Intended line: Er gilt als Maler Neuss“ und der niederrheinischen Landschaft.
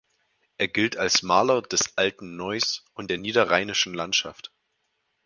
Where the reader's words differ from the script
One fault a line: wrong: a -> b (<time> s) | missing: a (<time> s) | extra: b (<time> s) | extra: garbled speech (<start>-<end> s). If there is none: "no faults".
extra: des alten (1.6 s)